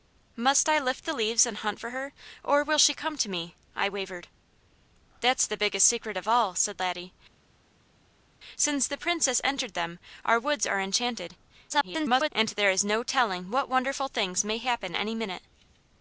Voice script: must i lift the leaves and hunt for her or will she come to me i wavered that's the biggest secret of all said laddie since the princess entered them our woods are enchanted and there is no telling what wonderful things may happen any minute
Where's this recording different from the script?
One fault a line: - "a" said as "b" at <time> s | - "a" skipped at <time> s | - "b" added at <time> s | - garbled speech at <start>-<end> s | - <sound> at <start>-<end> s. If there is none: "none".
- garbled speech at 11.7-12.3 s